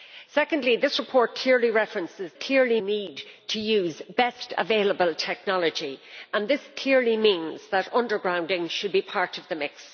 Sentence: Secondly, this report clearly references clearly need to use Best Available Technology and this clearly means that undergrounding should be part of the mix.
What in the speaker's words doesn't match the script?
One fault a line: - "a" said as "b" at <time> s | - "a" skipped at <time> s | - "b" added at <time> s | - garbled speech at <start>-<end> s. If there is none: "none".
none